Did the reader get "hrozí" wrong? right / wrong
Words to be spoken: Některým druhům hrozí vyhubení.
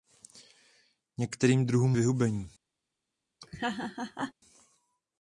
wrong